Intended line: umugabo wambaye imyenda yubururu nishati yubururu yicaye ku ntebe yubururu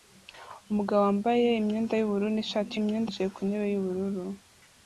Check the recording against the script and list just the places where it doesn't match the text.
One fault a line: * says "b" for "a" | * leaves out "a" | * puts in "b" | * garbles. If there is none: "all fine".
* says "imyenda" for "yubururu"